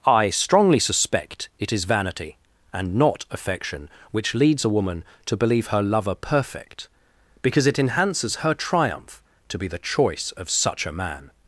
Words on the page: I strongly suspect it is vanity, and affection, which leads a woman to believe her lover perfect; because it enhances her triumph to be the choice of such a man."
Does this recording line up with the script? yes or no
no